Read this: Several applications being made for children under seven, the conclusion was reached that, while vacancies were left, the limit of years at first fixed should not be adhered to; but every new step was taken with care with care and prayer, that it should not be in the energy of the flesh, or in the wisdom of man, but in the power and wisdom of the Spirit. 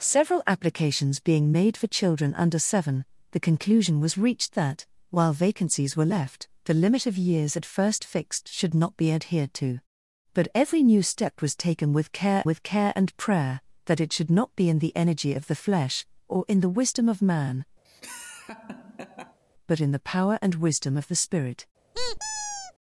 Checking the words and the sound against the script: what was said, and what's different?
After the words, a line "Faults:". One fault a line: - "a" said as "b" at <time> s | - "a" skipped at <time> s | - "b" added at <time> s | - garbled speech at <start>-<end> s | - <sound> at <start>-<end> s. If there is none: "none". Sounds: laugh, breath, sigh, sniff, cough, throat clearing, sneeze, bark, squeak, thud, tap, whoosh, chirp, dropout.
Several applications being made for children under seven, the conclusion was reached that, while vacancies were left, the limit of years at first fixed should not be adhered to; but every new step was taken with care with care and prayer, that it should not be in the energy of the flesh, or in the wisdom of man, but in the power and wisdom of the Spirit.
Faults:
- laugh at 17.8-19.4 s
- squeak at 21.9-22.7 s